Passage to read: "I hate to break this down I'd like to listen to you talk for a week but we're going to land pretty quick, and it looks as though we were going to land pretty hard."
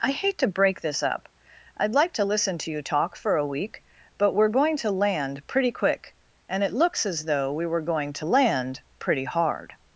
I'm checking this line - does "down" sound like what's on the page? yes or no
no